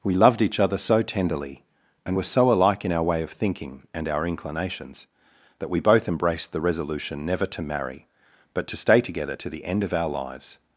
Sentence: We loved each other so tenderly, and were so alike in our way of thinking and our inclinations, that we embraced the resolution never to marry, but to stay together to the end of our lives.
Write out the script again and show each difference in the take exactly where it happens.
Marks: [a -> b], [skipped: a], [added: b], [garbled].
We loved each other so tenderly, and were so alike in our way of thinking and our inclinations, that we [added: both] embraced the resolution never to marry, but to stay together to the end of our lives.